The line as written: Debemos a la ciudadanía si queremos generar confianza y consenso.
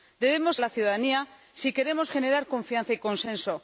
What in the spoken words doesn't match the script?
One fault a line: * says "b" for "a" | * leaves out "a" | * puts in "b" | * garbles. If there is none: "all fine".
all fine